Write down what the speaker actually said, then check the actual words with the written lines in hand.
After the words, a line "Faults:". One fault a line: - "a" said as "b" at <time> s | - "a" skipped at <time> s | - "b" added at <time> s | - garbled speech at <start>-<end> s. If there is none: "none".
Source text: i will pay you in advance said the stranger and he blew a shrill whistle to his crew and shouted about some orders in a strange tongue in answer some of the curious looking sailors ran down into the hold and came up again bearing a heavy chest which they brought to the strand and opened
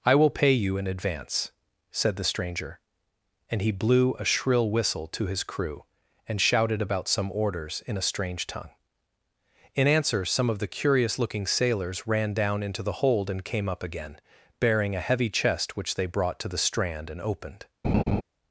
i will pay you in advance said the stranger and he blew a shrill whistle to his crew and shouted about some orders in a strange tongue in answer some of the curious looking sailors ran down into the hold and came up again bearing a heavy chest which they brought to the strand and opened
Faults:
none